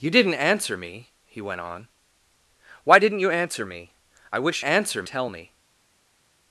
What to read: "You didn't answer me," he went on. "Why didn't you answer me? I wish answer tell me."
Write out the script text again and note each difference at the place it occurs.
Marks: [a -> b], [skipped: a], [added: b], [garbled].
"You didn't answer me," he went on. "Why didn't you answer me? I wish answer tell me."